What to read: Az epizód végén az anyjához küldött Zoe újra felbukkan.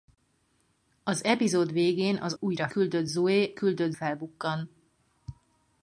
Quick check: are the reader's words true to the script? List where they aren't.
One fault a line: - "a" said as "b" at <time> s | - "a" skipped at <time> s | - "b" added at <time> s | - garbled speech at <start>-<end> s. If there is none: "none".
- "anyjához" said as "újra" at 2.4 s
- "újra" said as "küldött" at 3.5 s